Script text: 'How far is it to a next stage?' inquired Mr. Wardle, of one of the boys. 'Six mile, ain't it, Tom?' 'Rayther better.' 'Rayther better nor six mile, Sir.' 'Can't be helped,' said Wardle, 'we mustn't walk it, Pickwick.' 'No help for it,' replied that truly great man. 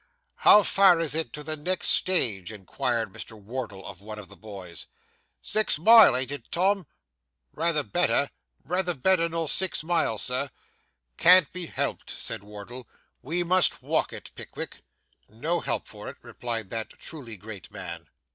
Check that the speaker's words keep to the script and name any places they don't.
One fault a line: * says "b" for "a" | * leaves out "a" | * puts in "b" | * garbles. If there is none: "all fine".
* says "the" for "a"
* says "must" for "mustn't"